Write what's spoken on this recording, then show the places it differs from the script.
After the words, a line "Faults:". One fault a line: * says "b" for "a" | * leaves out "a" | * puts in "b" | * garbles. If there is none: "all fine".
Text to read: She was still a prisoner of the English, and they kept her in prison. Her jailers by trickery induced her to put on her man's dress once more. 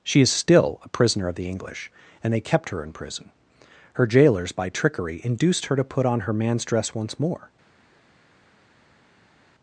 She is still a prisoner of the English, and they kept her in prison. Her jailers by trickery induced her to put on her man's dress once more.
Faults:
* says "is" for "was"